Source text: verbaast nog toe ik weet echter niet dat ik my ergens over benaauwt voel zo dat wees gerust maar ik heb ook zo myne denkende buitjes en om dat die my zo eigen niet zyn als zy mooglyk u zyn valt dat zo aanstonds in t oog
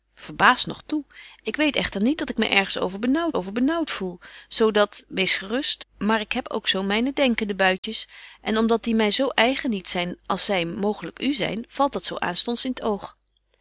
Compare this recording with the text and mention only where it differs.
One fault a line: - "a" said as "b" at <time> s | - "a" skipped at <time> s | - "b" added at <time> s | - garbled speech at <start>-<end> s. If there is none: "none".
- "over benaauwt" added at 3.3 s